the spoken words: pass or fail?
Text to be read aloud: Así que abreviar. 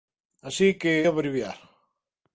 pass